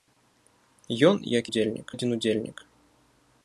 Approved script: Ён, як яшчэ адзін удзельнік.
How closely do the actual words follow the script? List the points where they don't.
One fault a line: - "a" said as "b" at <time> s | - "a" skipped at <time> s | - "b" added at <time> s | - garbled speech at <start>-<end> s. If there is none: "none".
- "яшчэ" said as "удзельнік" at 1.5 s